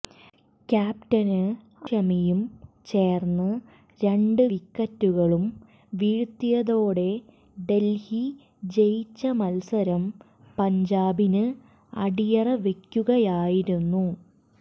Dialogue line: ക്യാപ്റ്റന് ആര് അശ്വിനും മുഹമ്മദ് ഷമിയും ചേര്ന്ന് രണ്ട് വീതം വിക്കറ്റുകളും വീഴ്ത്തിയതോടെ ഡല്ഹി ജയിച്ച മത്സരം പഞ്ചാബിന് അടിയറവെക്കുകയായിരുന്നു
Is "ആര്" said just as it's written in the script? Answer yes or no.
no